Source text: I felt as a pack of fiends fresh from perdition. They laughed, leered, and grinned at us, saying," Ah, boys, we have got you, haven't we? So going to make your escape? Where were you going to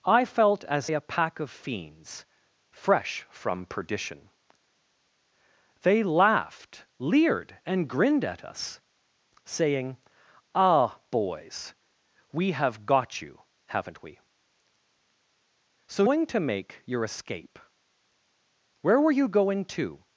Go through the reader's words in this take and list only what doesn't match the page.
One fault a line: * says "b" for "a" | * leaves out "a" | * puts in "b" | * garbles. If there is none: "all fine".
all fine